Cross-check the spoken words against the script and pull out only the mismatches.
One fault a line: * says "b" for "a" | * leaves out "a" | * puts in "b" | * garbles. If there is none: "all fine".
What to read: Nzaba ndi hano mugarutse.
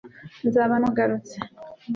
* leaves out "ndi hano"